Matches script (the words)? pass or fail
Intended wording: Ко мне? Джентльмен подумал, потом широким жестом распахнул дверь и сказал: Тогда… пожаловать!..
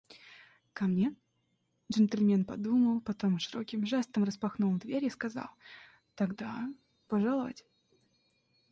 pass